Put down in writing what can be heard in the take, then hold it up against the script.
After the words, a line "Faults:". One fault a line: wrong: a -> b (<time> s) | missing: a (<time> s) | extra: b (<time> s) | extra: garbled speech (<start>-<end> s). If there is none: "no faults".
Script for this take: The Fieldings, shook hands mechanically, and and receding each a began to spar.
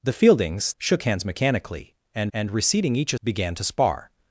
The Fieldings, shook hands mechanically, and and receding each a began to spar.
Faults:
no faults